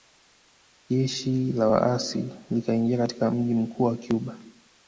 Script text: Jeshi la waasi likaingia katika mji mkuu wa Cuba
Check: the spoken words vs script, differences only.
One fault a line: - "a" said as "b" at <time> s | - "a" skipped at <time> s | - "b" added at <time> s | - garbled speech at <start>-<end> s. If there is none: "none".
none